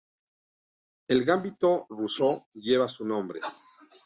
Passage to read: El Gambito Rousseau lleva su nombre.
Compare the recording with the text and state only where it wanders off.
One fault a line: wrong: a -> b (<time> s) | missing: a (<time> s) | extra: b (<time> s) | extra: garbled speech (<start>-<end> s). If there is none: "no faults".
no faults